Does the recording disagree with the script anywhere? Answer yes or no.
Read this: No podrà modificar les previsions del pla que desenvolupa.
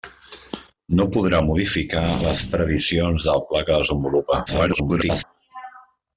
yes